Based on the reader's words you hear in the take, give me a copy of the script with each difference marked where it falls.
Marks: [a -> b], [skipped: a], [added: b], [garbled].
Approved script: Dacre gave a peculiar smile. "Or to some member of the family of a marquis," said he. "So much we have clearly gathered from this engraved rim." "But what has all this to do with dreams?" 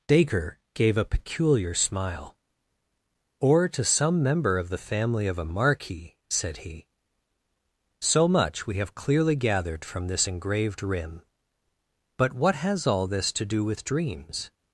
Dacre gave a peculiar smile. "Or to some member of the family of a marquis," said he. "So much we have clearly gathered from this engraved rim." "But what has all this to do with dreams?"